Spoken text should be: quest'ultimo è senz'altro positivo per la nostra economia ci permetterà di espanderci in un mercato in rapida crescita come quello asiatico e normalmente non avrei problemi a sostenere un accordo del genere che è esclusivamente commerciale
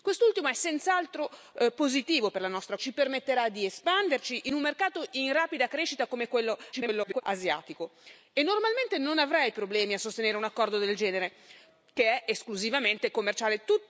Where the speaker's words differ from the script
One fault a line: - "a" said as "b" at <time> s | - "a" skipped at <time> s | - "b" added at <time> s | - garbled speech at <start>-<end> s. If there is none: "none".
- "economia" skipped at 2.8 s
- garbled speech at 6.7-7.2 s